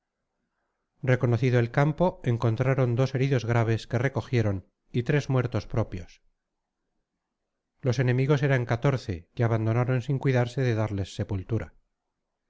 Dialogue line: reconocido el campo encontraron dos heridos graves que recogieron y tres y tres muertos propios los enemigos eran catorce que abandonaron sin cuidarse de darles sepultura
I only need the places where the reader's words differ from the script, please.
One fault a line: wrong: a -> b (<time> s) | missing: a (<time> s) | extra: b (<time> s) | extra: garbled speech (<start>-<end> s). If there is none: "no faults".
missing: y tres (5.3 s)